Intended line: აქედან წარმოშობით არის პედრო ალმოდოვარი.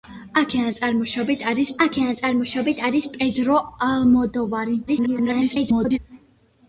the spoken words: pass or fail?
fail